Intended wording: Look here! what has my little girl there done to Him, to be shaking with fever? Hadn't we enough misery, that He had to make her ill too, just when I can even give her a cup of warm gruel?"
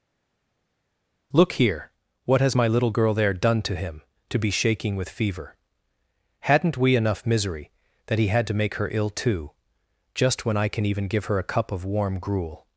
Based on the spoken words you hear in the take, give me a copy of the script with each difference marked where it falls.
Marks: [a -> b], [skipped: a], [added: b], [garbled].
Look here! what has my little girl there done to Him, to be shaking with fever? Hadn't we enough misery, that He had to make her ill too, just when I can even give her a cup of warm gruel?"